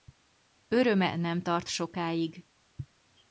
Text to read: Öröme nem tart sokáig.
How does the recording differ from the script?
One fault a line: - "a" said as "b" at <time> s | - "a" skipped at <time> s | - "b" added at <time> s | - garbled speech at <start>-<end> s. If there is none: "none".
none